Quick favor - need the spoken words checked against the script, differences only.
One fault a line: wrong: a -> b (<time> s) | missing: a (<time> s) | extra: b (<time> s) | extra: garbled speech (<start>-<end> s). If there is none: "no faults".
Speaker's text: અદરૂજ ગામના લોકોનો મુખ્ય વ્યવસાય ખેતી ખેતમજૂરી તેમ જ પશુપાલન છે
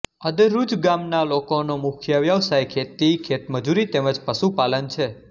no faults